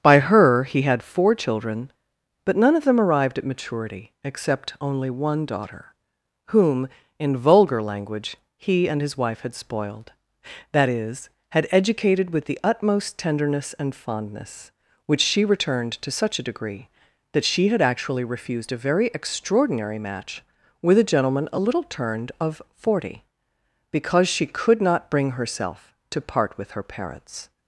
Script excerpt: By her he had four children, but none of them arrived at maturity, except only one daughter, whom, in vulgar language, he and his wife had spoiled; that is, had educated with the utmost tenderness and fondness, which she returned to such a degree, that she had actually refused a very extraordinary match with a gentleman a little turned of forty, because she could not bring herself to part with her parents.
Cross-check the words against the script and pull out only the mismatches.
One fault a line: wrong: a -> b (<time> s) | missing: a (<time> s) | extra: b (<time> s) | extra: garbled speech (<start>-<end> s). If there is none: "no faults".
no faults